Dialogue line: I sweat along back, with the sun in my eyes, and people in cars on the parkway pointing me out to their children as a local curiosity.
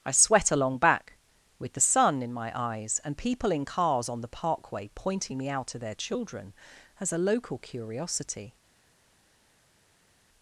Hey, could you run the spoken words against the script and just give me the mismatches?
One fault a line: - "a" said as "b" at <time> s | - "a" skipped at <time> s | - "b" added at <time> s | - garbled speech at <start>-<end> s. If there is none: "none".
none